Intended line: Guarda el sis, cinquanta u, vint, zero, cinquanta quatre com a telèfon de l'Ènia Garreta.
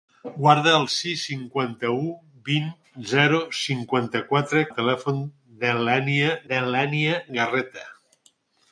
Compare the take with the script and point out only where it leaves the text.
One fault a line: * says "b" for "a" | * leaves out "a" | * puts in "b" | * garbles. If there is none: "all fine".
* leaves out "com"
* puts in "de l'Ènia"